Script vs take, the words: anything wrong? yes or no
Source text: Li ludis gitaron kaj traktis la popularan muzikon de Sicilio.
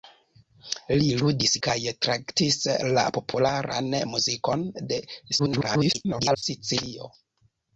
yes